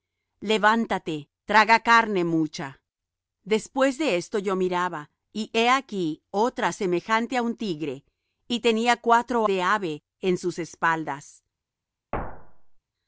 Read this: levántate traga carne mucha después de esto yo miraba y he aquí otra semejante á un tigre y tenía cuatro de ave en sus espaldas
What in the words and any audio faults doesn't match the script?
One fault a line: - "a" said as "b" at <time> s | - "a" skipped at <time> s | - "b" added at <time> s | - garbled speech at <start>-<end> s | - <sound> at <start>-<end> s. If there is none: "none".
- thud at 12.1-12.8 s